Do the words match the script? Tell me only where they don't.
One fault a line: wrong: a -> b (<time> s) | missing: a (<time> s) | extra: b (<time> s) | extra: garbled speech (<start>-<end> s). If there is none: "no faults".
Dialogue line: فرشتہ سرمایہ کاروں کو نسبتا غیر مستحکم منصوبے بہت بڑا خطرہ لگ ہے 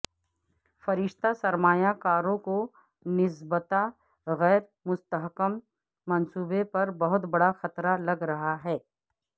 extra: پر (6.7 s)
extra: رہا (8.3 s)